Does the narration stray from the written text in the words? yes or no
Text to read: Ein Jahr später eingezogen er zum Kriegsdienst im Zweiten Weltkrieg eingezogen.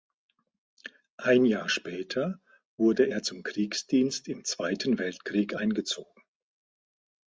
yes